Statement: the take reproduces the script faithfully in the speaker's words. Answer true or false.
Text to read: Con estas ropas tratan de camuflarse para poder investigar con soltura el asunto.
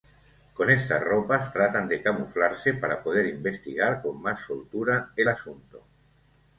false